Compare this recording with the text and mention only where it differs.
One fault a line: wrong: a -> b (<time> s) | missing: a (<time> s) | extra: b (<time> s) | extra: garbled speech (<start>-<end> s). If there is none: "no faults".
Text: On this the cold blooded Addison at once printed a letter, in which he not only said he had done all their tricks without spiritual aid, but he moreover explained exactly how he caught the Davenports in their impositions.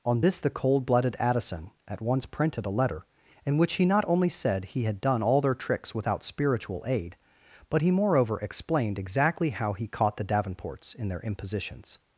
no faults